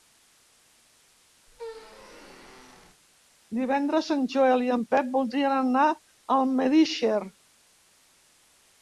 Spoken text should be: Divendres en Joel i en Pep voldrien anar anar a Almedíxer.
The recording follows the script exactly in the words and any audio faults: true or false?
false